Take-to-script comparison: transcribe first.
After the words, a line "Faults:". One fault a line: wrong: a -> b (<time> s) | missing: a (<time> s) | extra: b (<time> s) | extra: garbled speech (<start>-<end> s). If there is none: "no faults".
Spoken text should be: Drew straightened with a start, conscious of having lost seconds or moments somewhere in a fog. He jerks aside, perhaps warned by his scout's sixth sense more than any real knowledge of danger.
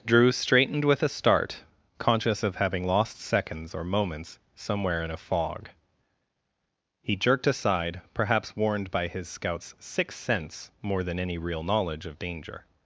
Drew straightened with a start, conscious of having lost seconds or moments somewhere in a fog. He jerked aside, perhaps warned by his scout's sixth sense more than any real knowledge of danger.
Faults:
wrong: jerks -> jerked (7.2 s)